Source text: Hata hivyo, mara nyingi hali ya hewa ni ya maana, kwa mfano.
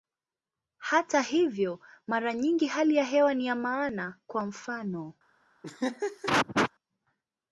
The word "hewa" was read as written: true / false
true